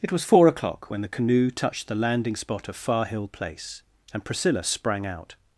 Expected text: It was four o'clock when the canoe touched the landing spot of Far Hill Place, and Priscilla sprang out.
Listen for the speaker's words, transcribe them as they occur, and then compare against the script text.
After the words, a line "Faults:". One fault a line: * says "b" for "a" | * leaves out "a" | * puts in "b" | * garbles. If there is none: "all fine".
It was four o'clock when the canoe touched the landing spot of Far Hill Place, and Priscilla sprang out.
Faults:
all fine